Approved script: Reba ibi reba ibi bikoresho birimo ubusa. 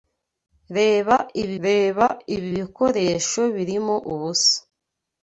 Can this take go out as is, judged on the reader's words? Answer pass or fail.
pass